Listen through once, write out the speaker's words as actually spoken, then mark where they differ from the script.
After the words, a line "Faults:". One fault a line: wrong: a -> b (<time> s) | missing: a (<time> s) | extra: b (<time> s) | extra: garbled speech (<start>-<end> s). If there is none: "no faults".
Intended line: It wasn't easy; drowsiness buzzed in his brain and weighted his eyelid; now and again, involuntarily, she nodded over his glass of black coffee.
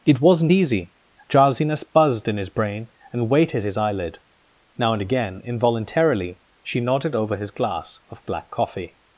It wasn't easy; drowsiness buzzed in his brain and weighted his eyelid; now and again, involuntarily, she nodded over his glass of black coffee.
Faults:
no faults